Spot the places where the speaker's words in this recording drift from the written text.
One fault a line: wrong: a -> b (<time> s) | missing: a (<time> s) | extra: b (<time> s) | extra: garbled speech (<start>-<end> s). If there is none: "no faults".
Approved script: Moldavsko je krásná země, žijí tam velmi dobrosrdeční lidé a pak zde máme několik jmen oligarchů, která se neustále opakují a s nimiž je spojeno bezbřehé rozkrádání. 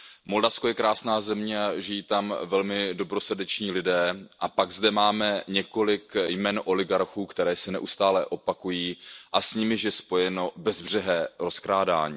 no faults